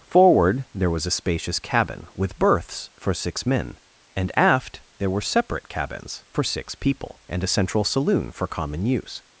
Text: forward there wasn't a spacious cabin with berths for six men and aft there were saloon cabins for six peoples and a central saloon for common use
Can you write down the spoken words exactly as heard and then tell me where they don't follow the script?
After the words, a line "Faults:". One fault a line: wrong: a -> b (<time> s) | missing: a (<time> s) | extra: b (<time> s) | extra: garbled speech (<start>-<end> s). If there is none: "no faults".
forward there was a spacious cabin with berths for six men and aft there were separate cabins for six people and a central saloon for common use
Faults:
wrong: wasn't -> was (0.9 s)
wrong: saloon -> separate (5.2 s)
wrong: peoples -> people (6.8 s)